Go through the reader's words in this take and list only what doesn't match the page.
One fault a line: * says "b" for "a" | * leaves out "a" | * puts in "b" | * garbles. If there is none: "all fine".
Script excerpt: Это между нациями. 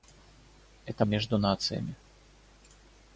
all fine